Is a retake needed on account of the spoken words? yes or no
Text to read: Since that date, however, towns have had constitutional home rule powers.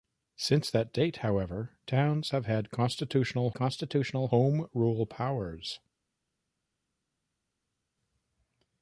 yes